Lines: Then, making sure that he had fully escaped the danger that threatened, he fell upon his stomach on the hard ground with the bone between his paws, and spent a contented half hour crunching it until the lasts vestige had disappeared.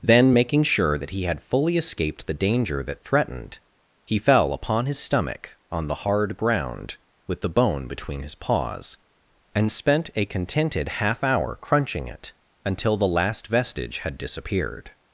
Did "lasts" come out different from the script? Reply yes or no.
yes